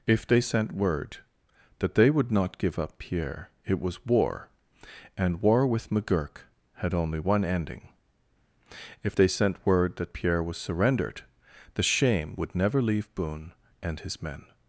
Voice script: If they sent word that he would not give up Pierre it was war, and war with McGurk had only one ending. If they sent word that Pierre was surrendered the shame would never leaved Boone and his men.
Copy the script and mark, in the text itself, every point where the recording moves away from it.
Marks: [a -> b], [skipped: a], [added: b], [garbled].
If they sent word that [he -> they] would not give up Pierre it was war, and war with McGurk had only one ending. If they sent word that Pierre was surrendered the shame would never [leaved -> leave] Boone and his men.